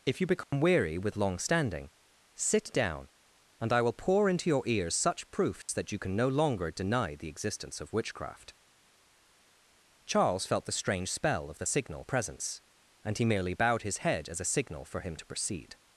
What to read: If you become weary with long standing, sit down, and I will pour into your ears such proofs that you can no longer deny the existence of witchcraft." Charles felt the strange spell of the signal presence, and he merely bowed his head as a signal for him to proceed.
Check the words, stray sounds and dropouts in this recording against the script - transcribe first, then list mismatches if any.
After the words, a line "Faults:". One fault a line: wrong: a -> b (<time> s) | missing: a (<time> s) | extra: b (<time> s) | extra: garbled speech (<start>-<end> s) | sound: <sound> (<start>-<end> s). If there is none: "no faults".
If you become weary with long standing, sit down, and I will pour into your ears such proofs that you can no longer deny the existence of witchcraft." Charles felt the strange spell of the signal presence, and he merely bowed his head as a signal for him to proceed.
Faults:
sound: dropout (0.4-0.5 s)
sound: dropout (5.6-5.7 s)